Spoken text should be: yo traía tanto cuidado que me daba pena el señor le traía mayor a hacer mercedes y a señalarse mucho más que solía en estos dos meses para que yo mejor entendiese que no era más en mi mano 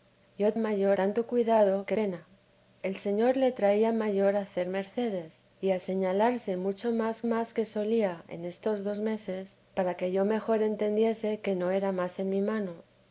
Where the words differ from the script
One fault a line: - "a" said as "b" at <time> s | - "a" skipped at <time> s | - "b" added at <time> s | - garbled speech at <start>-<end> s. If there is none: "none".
- "traía" said as "mayor" at 0.6 s
- "me daba" skipped at 2.0 s
- "más" added at 7.2 s